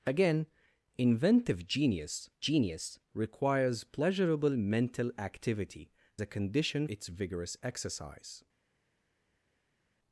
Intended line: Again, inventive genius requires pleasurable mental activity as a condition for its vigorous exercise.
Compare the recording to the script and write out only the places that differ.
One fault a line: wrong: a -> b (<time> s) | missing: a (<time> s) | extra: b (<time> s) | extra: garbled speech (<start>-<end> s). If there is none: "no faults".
extra: genius (2.4 s)
missing: as (5.9 s)
missing: for (6.9 s)